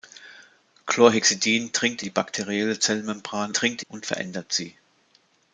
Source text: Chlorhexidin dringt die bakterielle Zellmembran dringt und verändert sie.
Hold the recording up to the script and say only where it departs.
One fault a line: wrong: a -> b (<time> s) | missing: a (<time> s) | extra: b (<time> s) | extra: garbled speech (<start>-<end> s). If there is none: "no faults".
no faults